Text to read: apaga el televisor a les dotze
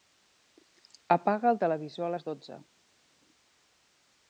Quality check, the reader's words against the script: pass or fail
pass